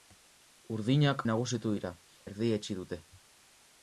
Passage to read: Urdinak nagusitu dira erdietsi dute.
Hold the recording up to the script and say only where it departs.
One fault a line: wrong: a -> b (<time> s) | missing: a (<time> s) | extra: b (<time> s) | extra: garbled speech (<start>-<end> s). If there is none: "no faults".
no faults